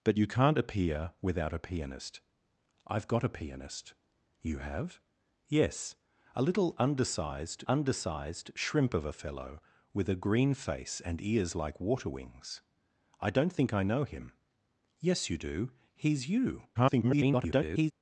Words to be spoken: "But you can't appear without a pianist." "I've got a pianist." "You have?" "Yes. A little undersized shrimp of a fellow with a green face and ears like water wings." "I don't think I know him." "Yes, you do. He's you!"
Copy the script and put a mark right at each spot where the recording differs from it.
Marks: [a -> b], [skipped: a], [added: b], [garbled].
"But you can't appear without a pianist." "I've got a pianist." "You have?" "Yes. A little undersized [added: undersized] shrimp of a fellow with a green face and ears like water wings." "I don't think I know him." "Yes, you do. He's you!" [garbled]